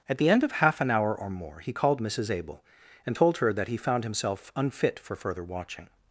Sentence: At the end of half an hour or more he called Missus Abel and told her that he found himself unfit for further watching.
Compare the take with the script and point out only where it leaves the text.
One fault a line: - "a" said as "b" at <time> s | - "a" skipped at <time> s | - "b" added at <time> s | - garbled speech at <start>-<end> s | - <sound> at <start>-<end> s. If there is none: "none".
none